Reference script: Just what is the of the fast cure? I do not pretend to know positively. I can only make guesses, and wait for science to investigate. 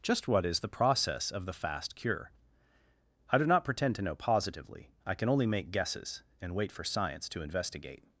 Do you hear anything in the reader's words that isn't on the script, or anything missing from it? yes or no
yes